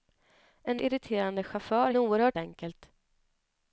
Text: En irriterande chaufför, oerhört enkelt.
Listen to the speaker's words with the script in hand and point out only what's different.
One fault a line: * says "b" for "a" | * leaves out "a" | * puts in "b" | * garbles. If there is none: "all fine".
all fine